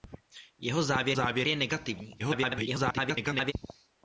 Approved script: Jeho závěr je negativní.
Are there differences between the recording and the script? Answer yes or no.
yes